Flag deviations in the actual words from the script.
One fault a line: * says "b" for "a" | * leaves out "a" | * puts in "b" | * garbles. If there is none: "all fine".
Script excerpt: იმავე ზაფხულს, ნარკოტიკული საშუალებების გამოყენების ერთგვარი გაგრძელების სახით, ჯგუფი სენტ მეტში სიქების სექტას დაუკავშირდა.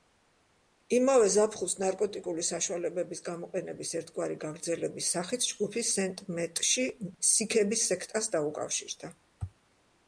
all fine